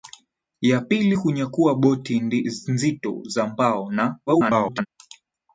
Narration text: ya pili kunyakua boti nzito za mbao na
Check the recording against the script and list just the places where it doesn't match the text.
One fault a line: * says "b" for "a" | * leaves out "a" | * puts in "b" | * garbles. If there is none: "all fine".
* garbles